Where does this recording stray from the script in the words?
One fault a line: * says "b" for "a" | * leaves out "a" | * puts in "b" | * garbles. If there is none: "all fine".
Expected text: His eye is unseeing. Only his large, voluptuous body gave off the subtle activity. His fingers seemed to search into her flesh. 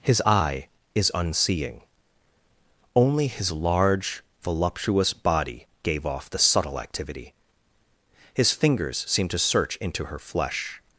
all fine